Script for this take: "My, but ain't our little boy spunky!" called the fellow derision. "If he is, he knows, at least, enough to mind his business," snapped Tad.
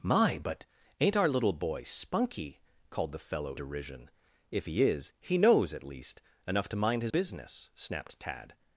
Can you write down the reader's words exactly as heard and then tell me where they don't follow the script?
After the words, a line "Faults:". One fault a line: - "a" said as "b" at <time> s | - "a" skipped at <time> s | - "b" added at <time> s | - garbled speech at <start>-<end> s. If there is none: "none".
"My, but ain't our little boy spunky!" called the fellow derision. "If he is, he knows, at least, enough to mind his business," snapped Tad.
Faults:
none